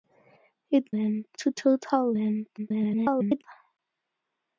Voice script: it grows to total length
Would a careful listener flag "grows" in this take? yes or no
yes